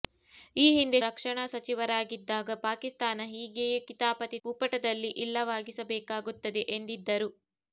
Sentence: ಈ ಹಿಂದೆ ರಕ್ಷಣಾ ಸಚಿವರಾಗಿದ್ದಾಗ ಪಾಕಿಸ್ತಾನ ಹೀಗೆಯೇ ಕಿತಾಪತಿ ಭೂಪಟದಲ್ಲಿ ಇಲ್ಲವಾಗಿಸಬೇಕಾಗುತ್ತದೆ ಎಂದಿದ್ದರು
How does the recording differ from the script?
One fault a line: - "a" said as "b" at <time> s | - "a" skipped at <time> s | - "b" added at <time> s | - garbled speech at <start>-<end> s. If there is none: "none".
none